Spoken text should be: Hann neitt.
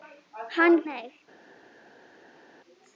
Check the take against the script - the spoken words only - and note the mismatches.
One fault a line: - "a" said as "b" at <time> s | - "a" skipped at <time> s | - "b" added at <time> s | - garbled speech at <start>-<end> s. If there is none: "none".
none